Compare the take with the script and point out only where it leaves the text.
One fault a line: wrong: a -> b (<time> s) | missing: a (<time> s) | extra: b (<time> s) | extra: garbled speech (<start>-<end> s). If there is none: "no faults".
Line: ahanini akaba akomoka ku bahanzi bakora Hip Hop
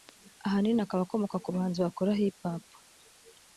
no faults